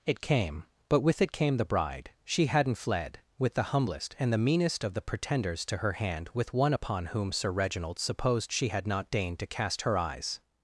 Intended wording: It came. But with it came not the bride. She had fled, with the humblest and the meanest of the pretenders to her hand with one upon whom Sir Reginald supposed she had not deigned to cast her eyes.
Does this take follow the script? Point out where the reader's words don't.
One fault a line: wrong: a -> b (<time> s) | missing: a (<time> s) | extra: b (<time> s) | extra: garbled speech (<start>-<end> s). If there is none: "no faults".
missing: not (1.6 s)
wrong: had -> hadn't (2.5 s)